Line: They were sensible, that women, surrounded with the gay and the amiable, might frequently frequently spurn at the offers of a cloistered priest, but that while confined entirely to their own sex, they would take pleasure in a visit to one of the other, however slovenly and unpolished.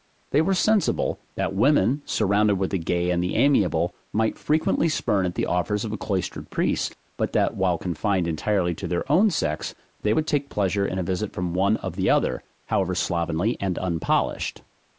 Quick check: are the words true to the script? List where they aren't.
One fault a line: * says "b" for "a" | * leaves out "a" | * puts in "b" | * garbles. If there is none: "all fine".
* leaves out "frequently"
* says "from" for "to"